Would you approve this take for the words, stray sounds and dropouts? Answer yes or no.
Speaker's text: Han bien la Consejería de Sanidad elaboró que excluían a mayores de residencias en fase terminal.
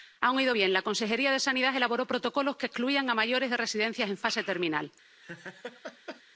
no